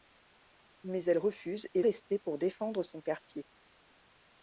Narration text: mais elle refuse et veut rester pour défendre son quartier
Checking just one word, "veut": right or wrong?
wrong